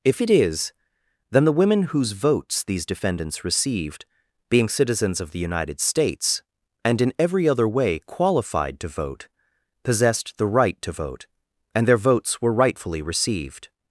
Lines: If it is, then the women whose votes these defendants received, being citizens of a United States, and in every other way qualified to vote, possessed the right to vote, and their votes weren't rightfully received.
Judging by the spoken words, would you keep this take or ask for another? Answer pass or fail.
fail